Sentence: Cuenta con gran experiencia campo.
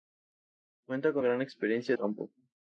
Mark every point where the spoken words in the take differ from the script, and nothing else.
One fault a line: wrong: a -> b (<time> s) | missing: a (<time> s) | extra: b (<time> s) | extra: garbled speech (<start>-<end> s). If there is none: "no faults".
no faults